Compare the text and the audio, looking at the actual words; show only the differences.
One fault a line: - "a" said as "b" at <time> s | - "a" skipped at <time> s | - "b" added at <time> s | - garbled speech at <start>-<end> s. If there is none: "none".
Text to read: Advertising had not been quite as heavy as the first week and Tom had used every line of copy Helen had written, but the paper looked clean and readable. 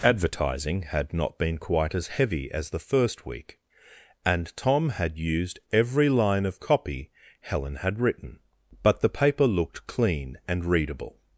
none